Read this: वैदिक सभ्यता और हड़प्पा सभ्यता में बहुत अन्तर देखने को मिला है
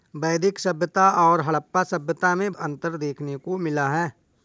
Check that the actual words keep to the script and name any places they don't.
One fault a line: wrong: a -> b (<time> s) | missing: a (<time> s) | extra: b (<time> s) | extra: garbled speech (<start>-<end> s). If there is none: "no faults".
missing: बहुत (2.5 s)